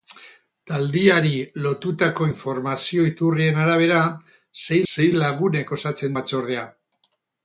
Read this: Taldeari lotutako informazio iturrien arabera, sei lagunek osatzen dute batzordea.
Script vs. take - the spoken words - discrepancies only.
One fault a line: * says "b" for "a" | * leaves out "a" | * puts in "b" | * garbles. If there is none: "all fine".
* puts in "sei"
* leaves out "dute"